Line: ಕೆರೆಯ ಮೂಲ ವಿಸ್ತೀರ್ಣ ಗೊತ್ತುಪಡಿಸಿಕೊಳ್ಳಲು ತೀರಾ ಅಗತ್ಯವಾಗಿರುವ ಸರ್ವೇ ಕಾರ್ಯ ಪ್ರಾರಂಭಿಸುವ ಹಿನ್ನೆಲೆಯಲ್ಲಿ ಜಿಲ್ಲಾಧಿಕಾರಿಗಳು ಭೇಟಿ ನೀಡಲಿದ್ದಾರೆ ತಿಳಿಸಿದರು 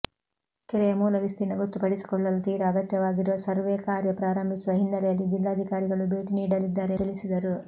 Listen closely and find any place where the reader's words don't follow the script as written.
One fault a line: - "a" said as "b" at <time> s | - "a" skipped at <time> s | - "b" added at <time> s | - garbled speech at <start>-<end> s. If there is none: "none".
none